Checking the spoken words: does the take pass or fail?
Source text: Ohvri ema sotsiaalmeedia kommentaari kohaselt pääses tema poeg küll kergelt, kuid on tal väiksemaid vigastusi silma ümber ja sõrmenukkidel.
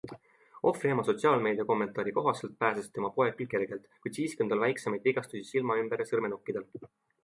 fail